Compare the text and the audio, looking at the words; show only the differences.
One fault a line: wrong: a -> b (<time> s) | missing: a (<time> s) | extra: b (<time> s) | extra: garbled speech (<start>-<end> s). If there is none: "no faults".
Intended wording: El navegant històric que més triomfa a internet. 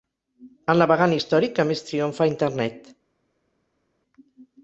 no faults